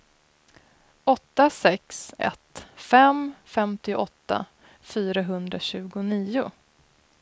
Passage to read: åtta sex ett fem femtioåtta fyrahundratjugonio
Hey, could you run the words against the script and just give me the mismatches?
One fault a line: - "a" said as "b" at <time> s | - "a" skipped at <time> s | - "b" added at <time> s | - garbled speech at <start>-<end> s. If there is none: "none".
none